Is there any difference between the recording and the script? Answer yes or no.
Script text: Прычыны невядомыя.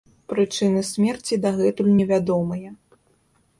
yes